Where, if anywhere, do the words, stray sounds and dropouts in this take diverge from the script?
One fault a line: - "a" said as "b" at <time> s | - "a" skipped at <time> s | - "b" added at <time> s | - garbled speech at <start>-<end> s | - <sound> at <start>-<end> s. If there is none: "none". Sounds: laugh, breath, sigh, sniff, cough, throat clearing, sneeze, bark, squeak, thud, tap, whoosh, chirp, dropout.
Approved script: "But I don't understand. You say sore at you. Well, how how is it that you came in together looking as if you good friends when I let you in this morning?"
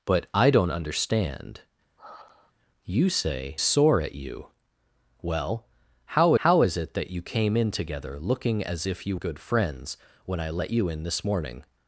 - sigh at 2.0-2.5 s